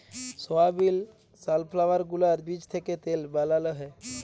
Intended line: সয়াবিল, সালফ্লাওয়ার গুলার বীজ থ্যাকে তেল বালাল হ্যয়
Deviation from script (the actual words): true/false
false